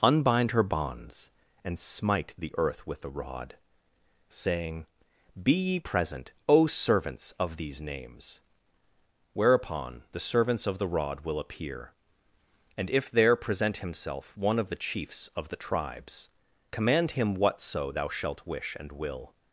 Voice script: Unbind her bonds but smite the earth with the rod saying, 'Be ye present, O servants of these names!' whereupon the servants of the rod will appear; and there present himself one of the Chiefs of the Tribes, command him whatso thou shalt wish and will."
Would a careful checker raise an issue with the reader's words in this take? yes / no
yes